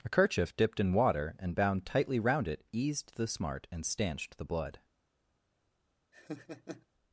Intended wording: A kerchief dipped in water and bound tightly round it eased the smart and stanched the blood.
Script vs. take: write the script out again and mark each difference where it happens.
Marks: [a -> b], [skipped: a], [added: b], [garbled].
A kerchief dipped in water and bound tightly round it eased the smart and stanched the blood.